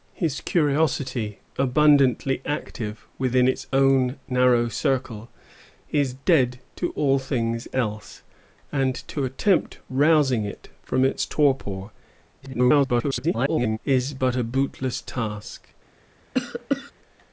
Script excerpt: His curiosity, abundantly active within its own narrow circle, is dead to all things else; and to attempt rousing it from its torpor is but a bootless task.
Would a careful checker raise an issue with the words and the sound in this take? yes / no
yes